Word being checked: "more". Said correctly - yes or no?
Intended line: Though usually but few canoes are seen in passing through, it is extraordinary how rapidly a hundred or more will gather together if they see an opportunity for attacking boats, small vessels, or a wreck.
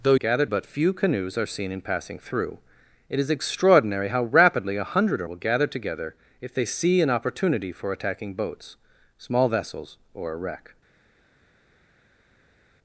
no